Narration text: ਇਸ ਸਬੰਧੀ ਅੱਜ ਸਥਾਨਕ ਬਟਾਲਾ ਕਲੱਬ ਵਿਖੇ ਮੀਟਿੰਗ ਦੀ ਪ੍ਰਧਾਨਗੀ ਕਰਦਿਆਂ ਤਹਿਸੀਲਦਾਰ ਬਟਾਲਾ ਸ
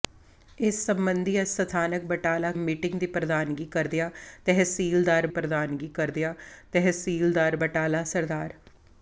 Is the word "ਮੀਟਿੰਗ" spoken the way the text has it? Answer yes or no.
no